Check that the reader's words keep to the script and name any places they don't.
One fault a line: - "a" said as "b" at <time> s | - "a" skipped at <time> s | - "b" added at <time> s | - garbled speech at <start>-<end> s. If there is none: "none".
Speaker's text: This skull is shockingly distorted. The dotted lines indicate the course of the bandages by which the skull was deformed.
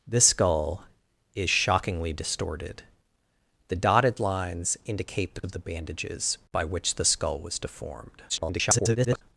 - "course" skipped at 5.4 s
- garbled speech at 8.3-9.2 s